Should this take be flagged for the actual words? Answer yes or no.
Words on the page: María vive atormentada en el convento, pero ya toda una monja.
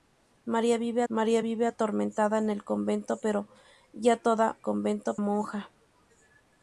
yes